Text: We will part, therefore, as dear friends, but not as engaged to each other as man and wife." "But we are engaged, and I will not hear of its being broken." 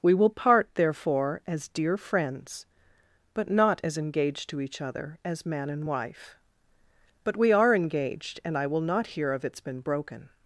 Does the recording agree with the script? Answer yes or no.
no